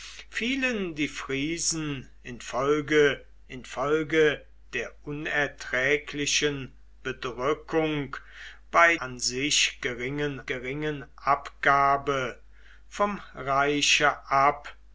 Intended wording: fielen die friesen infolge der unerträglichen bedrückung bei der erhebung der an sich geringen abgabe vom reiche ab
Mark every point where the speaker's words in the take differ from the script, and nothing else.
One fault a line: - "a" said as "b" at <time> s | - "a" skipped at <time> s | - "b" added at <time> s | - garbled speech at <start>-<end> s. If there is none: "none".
- "infolge" added at 3.5 s
- "der erhebung der" skipped at 9.0 s
- "geringen" added at 10.5 s